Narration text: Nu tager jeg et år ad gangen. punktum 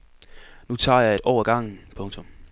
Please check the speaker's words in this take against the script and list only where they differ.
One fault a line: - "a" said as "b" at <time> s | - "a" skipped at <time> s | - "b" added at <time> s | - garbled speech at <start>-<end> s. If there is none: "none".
none